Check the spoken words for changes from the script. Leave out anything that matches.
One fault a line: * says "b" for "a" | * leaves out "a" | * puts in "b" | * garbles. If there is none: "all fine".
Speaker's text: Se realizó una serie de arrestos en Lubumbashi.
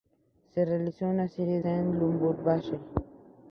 * leaves out "de arrestos"